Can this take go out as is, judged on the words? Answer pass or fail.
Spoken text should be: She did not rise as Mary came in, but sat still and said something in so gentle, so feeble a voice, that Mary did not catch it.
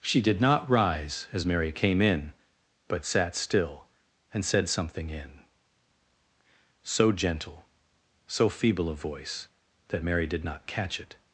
pass